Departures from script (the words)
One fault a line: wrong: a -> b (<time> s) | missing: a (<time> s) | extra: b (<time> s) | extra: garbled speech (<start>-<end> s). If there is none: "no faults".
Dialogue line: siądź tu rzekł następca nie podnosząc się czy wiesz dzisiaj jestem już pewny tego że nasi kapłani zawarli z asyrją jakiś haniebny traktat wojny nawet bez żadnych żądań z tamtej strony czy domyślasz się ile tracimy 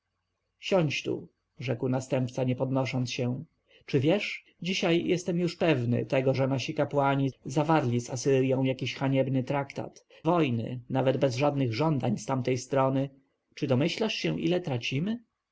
no faults